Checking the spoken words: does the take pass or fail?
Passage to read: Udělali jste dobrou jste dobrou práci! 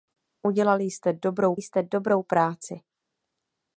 pass